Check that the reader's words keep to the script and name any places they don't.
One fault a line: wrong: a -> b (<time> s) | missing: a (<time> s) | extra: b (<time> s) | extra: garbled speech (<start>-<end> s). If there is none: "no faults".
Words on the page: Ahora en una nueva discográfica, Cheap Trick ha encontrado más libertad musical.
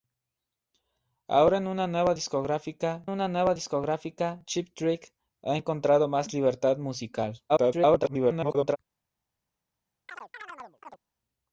extra: una nueva discográfica (3.1 s)
extra: garbled speech (7.5-8.8 s)